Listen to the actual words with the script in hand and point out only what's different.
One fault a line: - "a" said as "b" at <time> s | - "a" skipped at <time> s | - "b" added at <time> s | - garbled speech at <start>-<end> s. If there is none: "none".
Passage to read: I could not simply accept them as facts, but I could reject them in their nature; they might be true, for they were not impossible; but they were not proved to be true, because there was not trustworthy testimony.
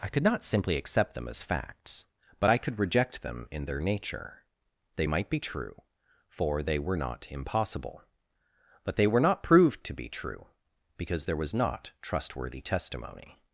none